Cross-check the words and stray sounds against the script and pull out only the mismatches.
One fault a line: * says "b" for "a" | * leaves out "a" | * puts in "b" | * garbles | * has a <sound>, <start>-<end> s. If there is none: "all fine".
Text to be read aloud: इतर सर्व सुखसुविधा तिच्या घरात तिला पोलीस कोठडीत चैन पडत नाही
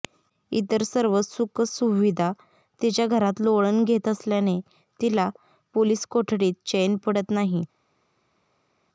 * puts in "लोळण घेत असल्याने"